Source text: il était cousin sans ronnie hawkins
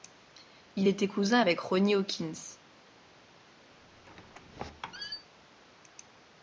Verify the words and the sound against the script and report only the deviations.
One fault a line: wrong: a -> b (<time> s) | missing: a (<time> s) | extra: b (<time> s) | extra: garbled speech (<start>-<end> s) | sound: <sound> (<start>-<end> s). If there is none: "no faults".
wrong: sans -> avec (1.4 s)
sound: squeak (3.7-5.3 s)